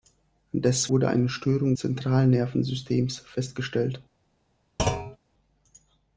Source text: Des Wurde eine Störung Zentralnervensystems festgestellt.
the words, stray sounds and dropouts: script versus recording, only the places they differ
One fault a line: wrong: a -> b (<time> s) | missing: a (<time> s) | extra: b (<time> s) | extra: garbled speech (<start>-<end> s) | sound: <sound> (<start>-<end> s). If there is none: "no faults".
sound: thud (4.8-5.2 s)